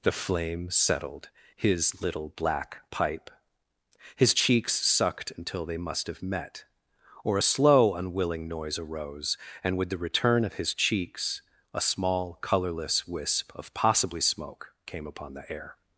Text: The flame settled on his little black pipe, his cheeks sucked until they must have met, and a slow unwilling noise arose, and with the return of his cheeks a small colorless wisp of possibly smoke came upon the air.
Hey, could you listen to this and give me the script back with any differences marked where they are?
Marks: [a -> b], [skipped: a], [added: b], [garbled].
The flame settled [skipped: on] his little black pipe, his cheeks sucked until they must have met, [and -> or] a slow unwilling noise arose, and with the return of his cheeks a small colorless wisp of possibly smoke came upon the air.